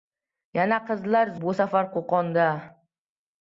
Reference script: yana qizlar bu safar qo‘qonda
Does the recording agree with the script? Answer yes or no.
yes